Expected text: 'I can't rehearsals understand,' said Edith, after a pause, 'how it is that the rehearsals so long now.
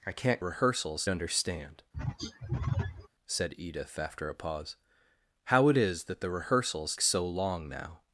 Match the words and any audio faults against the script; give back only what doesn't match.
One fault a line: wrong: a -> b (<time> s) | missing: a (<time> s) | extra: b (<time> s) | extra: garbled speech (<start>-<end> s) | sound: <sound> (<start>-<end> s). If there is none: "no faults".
sound: throat clearing (1.9-3.1 s)